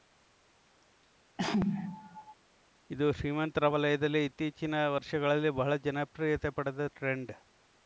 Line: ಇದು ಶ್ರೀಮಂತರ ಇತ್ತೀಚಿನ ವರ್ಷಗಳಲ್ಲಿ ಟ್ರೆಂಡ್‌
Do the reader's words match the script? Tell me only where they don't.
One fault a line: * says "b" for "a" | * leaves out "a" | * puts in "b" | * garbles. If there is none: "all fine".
* puts in "ವಲಯದಲ್ಲಿ"
* puts in "ಬಹಳ ಜನಪ್ರಿಯತೆ ಪಡೆದ"